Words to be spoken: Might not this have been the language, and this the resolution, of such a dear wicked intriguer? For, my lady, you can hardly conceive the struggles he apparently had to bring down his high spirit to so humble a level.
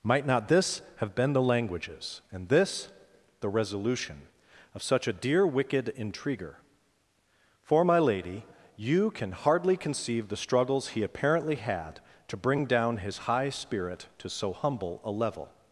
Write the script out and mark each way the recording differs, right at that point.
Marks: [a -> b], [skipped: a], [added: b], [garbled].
Might not this have been the [language, -> languages] and this the resolution, of such a dear wicked intriguer? For, my lady, you can hardly conceive the struggles he apparently had to bring down his high spirit to so humble a level.